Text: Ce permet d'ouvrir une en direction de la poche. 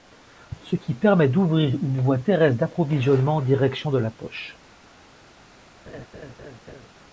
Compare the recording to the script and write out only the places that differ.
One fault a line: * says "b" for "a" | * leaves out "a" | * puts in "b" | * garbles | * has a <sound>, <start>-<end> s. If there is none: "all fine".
* puts in "qui"
* puts in "voie terrestre d'approvisionnement"
* has a laugh, 5.9-6.9 s